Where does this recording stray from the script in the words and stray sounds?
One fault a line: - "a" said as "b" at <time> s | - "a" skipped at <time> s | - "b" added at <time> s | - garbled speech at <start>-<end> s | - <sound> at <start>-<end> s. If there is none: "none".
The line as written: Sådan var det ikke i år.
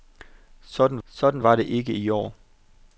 - "sådan" added at 1.1 s